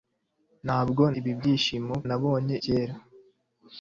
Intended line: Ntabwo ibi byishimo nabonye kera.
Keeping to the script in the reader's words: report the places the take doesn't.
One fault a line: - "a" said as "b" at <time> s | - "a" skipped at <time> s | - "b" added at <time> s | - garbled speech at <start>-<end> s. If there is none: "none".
none